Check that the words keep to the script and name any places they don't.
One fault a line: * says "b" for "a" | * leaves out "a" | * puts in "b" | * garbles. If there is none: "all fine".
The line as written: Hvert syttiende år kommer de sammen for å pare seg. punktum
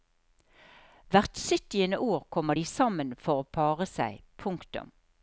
all fine